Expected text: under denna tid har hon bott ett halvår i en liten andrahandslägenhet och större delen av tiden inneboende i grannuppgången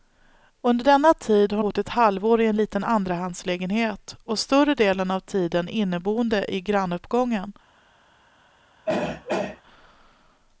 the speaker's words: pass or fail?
fail